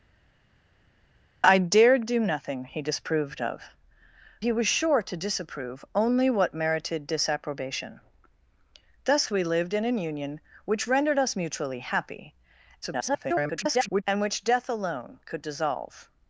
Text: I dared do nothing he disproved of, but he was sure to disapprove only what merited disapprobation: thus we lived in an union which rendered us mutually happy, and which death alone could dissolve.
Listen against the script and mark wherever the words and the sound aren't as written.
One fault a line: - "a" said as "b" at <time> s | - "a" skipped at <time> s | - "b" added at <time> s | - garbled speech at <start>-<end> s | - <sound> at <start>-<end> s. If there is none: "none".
- "but" skipped at 3.6 s
- garbled speech at 12.8-14.0 s